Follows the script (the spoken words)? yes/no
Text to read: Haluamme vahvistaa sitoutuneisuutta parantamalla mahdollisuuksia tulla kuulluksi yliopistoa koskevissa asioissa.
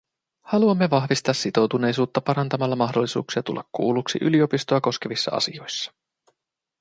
yes